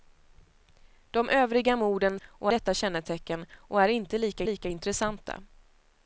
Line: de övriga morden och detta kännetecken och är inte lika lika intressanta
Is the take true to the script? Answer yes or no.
yes